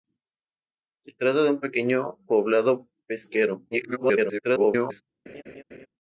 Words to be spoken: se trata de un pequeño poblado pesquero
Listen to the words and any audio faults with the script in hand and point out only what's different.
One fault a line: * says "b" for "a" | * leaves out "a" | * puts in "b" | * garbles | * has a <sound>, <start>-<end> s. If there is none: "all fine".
* garbles
* has a laugh, 5.3-5.9 s